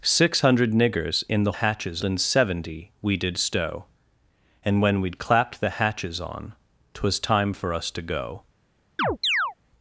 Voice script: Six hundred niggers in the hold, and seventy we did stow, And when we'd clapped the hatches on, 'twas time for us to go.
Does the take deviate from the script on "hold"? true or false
true